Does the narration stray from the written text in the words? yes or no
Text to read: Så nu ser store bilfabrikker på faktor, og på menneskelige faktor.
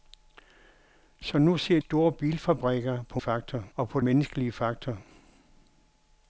no